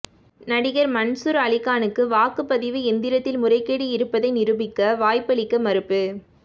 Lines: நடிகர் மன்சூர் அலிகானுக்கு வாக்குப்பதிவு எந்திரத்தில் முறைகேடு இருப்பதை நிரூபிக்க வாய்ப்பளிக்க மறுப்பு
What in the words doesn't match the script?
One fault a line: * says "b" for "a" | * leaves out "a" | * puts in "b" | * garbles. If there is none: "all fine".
all fine